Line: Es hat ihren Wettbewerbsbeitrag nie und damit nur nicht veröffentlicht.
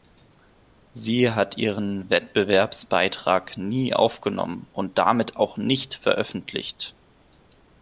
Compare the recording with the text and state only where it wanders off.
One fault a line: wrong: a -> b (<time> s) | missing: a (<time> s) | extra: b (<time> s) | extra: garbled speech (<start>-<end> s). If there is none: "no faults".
wrong: Es -> Sie (0.9 s)
extra: aufgenommen (3.9 s)
wrong: nur -> auch (5.4 s)